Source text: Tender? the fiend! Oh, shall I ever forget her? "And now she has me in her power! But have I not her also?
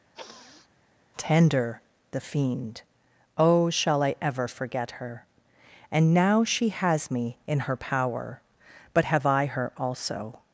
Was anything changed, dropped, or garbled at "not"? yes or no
yes